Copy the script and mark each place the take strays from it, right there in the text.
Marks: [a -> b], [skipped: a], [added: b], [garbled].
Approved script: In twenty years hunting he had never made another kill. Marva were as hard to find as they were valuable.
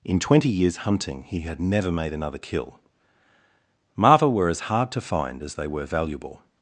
In twenty years hunting he had never made another kill. Marva were as hard to find as they were valuable.